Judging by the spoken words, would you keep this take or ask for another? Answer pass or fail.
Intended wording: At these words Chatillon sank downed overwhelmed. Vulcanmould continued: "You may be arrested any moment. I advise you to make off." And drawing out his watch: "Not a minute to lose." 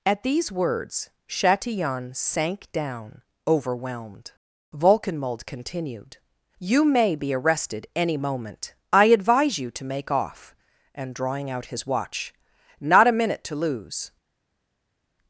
fail